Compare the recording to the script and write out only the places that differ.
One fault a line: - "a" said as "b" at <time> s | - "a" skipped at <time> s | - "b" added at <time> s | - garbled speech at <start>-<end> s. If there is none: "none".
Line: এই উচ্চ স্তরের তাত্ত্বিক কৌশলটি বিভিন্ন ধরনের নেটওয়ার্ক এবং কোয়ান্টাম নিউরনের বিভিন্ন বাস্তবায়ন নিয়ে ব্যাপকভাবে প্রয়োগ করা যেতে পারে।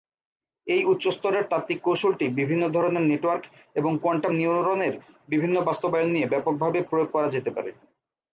none